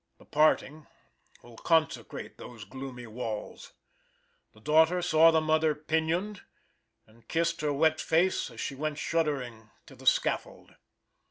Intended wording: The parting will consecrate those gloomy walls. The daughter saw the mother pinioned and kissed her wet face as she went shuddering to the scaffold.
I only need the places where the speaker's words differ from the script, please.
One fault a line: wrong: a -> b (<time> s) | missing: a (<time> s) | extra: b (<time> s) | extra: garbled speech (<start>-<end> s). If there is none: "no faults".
no faults